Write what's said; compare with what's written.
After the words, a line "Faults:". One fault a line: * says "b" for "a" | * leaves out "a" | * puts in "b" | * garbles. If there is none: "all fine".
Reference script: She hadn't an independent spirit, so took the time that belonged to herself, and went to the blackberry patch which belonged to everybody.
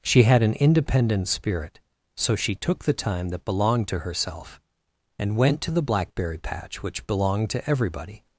She had an independent spirit, so she took the time that belonged to herself, and went to the blackberry patch which belonged to everybody.
Faults:
* says "had" for "hadn't"
* puts in "she"